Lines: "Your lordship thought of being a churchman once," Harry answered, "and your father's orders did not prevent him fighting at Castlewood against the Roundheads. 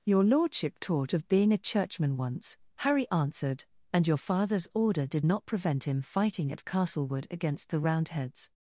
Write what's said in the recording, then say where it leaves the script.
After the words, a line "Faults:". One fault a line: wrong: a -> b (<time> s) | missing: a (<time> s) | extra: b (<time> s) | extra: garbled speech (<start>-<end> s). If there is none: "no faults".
"Your lordship taught of being a churchman once," Harry answered, "and your father's order did not prevent him fighting at Castlewood against the Roundheads.
Faults:
wrong: thought -> taught (0.8 s)
wrong: orders -> order (4.7 s)